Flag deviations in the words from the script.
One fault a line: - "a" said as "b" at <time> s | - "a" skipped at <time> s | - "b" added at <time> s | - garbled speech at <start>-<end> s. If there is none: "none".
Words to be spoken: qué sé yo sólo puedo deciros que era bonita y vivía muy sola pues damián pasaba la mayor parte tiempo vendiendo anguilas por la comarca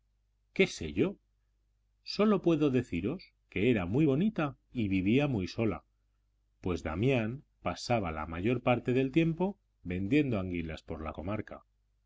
- "muy" added at 3.9 s
- "del" added at 8.9 s